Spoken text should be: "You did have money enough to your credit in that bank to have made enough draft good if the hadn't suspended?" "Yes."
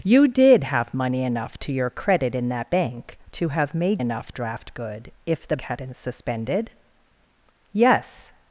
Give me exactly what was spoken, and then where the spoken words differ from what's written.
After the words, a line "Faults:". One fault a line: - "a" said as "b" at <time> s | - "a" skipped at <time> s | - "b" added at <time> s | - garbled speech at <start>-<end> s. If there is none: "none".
"You did have money enough to your credit in that bank to have made enough draft good if the hadn't suspended?" "Yes."
Faults:
none